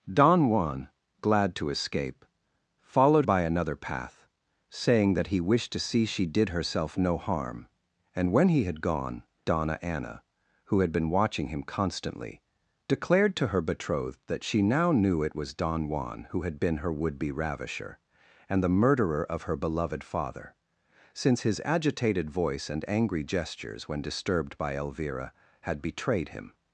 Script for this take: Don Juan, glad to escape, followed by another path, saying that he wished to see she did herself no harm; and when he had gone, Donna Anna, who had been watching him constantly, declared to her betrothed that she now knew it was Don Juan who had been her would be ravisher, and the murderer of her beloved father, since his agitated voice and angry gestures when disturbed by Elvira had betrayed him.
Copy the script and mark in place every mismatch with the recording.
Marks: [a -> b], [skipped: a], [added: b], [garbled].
Don Juan, glad to escape, followed by another path, saying that he wished to see she did herself no harm; and when he had gone, Donna Anna, who had been watching him constantly, declared to her betrothed that she now knew it was Don Juan who had been her would be ravisher, and the murderer of her beloved father, since his agitated voice and angry gestures when disturbed by Elvira had betrayed him.